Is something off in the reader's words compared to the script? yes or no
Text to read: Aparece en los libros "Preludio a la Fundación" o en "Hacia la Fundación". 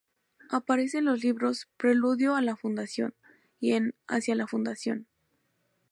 yes